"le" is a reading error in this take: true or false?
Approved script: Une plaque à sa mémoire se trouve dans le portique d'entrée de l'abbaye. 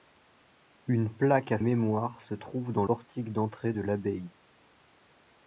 true